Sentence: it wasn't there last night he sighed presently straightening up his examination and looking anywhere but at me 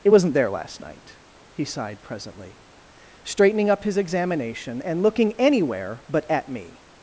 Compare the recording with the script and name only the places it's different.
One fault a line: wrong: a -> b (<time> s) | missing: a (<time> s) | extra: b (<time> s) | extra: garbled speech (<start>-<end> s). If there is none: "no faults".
no faults